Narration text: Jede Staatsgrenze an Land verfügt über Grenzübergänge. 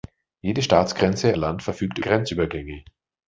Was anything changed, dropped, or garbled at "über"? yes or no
yes